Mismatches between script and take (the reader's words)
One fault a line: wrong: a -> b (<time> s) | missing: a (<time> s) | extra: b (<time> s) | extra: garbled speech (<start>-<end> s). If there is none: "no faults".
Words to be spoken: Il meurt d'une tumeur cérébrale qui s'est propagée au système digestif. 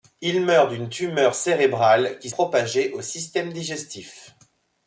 missing: s'est (2.3 s)